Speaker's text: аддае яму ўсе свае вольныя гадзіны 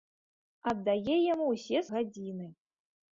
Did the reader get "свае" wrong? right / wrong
wrong